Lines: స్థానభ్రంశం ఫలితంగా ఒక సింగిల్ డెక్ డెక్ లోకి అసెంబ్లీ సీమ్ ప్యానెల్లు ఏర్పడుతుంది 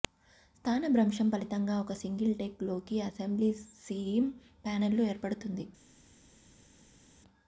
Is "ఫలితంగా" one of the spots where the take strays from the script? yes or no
no